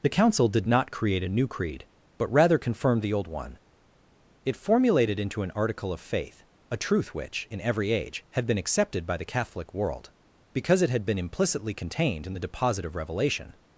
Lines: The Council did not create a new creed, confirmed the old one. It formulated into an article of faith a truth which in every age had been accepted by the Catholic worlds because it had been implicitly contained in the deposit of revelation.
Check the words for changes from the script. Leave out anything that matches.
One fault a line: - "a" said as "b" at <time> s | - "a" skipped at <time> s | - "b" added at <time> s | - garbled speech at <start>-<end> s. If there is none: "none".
- "but rather" added at 2.2 s
- "worlds" said as "world" at 9.7 s